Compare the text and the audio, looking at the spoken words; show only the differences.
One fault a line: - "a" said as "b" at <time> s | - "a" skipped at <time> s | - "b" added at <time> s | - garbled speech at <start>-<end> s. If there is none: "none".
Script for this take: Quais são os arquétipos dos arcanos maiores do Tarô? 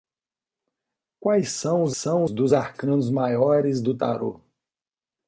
- "arquétipos" said as "são" at 1.9 s